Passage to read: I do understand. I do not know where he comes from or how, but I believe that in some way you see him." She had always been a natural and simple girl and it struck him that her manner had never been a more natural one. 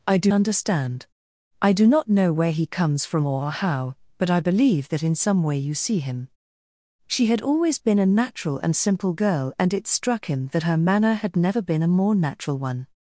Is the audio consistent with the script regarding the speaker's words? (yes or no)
yes